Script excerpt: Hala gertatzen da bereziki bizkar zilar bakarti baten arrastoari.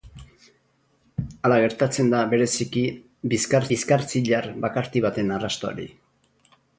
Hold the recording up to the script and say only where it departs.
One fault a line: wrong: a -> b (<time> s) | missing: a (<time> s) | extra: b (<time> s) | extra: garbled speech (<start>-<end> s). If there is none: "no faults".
extra: bizkar (3.7 s)